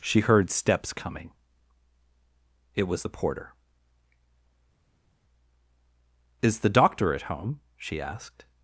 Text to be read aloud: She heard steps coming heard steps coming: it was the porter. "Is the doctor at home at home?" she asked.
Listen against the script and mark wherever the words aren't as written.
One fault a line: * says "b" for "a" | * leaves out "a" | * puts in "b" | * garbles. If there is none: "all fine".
* leaves out "heard steps coming"
* leaves out "at home"